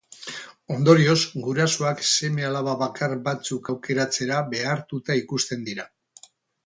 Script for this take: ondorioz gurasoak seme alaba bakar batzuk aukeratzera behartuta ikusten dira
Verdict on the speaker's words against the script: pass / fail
pass